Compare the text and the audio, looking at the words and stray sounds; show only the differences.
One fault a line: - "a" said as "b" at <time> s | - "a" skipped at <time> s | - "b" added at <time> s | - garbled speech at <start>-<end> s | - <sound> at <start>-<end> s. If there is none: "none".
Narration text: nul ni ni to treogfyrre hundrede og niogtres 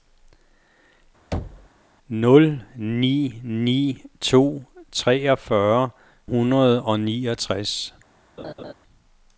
- thud at 1.3-1.7 s
- laugh at 8.4-8.7 s